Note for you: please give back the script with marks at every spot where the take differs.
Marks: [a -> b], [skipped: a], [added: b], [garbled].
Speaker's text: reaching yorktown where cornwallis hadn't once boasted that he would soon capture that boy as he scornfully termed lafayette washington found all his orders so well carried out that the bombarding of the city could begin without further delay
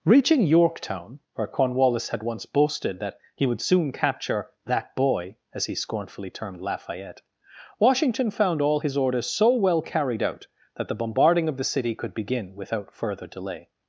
reaching yorktown where cornwallis [hadn't -> had] once boasted that he would soon capture that boy as he scornfully termed lafayette washington found all his orders so well carried out that the bombarding of the city could begin without further delay